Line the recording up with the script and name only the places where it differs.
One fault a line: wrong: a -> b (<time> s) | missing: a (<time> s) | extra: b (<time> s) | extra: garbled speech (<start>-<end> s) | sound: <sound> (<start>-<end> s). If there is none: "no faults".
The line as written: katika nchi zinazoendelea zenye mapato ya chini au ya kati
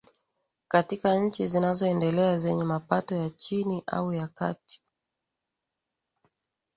no faults